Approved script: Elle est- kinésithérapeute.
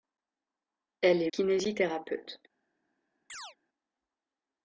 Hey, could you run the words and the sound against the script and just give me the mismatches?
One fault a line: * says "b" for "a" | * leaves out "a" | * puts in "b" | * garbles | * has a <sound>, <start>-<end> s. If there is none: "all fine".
* has a chirp, 3.3-3.6 s